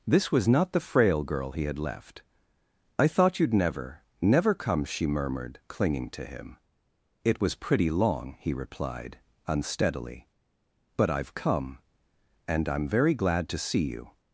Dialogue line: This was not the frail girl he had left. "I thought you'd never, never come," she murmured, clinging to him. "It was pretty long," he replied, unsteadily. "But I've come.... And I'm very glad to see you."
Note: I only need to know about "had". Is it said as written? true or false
true